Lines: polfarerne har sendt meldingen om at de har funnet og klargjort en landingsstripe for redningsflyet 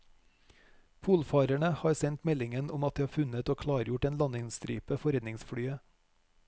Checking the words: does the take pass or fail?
pass